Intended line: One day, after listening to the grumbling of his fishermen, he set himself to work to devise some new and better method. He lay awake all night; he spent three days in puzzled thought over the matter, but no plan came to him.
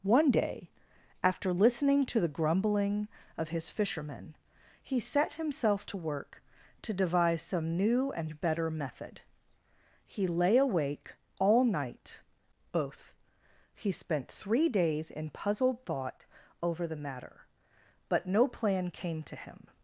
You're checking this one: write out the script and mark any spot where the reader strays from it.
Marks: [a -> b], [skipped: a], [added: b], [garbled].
One day, after listening to the grumbling of his fishermen, he set himself to work to devise some new and better method. He lay awake all night; [added: both] he spent three days in puzzled thought over the matter, but no plan came to him.